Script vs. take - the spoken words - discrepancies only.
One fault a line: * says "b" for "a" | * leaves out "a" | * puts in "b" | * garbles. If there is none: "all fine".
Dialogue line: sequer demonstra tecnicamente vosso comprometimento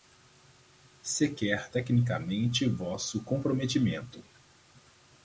* leaves out "demonstra"